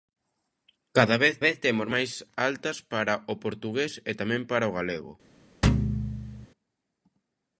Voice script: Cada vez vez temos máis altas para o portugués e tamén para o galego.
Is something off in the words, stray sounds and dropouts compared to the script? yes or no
yes